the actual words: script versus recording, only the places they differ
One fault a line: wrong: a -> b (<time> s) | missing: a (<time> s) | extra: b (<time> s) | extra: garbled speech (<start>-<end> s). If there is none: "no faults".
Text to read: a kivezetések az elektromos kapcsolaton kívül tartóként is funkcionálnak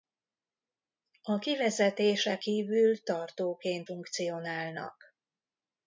missing: az elektromos kapcsolaton (2.4 s)
missing: is (3.9 s)